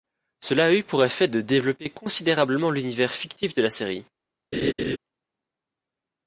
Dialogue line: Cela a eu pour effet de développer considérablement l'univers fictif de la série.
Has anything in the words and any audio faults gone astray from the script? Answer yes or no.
yes